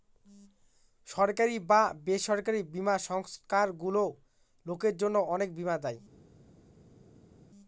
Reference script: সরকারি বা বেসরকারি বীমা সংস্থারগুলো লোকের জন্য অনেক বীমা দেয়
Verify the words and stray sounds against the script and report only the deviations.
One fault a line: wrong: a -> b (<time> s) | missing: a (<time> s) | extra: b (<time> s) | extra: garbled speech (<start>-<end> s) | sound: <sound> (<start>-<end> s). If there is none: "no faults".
no faults